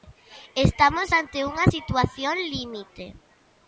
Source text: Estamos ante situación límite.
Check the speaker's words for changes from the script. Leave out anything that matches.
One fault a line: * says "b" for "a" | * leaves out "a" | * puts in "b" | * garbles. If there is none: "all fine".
* puts in "unha"